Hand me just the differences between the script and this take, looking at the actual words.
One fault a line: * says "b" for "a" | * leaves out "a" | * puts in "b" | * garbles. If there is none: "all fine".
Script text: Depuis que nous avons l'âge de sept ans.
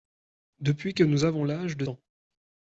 * leaves out "sept"